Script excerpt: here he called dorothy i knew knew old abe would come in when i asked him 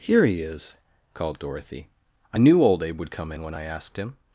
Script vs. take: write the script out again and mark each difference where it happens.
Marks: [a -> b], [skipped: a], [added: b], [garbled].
here he [added: is] called dorothy i knew [skipped: knew] old abe would come in when i asked him